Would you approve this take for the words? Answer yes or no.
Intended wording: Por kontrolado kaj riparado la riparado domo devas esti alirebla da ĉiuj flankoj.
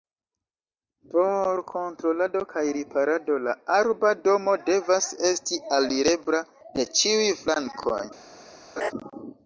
no